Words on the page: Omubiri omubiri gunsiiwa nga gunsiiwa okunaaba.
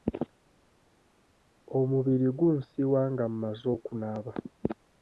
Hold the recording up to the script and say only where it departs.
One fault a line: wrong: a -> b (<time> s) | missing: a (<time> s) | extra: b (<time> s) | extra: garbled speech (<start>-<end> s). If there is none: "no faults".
missing: omubiri (2.3 s)
wrong: gunsiiwa -> mmaze (3.3 s)